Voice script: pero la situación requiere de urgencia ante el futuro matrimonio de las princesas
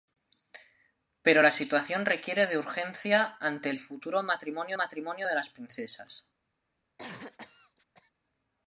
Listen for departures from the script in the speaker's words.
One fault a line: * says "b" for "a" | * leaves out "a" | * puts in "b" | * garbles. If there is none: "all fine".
* puts in "matrimonio"